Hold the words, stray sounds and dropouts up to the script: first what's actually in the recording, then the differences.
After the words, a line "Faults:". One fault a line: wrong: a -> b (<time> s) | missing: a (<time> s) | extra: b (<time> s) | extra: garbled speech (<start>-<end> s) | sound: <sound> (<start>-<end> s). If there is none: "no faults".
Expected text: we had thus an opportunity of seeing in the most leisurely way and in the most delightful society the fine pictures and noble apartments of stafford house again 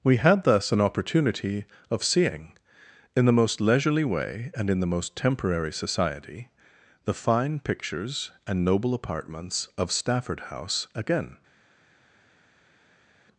we had thus an opportunity of seeing in the most leisurely way and in the most temporary society the fine pictures and noble apartments of stafford house again
Faults:
wrong: delightful -> temporary (5.2 s)